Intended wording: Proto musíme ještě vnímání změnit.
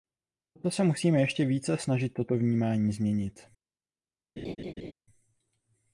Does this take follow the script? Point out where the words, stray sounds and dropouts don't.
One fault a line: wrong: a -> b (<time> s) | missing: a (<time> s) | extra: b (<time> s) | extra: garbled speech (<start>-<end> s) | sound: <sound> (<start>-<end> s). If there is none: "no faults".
extra: se (0.7 s)
extra: více snažit toto (1.4 s)
sound: laugh (4.4-4.9 s)